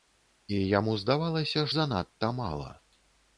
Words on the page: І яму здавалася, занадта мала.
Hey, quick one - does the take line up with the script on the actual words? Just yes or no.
yes